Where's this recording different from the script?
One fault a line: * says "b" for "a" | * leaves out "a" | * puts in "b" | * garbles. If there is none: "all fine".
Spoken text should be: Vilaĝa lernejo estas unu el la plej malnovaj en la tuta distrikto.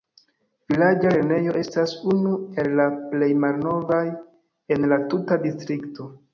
all fine